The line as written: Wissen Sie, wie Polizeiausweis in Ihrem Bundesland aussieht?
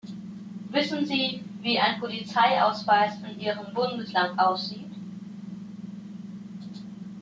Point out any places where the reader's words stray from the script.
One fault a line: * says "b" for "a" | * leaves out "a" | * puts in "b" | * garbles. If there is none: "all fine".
* puts in "ein"